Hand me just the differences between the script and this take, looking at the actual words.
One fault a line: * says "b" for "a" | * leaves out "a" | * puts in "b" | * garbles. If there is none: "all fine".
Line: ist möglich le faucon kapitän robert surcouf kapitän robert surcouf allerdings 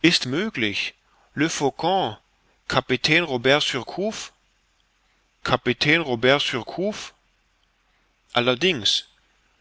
all fine